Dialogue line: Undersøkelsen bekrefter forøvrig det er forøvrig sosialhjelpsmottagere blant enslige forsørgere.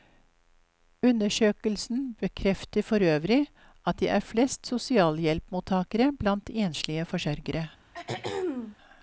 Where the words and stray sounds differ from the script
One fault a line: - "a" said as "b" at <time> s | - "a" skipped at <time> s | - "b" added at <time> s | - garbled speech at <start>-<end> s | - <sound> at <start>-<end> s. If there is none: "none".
- "at" added at 3.9 s
- "forøvrig" said as "flest" at 4.2 s
- throat clearing at 7.9-8.8 s